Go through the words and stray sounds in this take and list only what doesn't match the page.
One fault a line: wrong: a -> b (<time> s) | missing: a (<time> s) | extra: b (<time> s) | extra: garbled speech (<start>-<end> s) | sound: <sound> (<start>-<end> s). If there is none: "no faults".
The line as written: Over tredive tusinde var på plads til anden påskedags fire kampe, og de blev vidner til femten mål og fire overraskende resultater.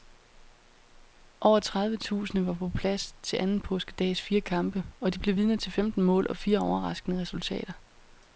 no faults